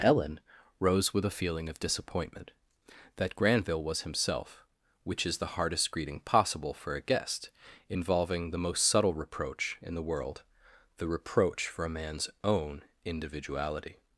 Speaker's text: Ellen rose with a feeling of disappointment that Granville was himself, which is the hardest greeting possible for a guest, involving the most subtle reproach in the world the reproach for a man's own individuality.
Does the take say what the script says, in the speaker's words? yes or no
yes